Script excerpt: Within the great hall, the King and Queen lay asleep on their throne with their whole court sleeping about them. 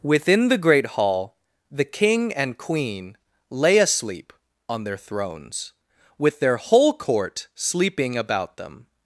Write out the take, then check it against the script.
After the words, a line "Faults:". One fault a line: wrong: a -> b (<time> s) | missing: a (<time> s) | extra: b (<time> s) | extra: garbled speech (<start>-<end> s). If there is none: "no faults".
Within the great hall, the King and Queen lay asleep on their thrones with their whole court sleeping about them.
Faults:
wrong: throne -> thrones (5.0 s)